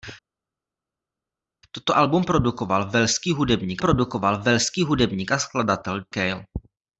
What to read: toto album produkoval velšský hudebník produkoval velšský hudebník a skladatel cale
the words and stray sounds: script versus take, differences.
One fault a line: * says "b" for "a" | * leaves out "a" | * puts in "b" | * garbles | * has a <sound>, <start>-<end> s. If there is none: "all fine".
all fine